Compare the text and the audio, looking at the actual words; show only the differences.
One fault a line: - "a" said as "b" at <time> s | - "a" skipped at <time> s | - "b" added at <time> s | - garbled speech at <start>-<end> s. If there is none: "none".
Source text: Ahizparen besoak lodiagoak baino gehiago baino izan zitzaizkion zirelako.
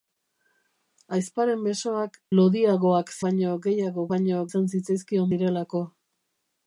none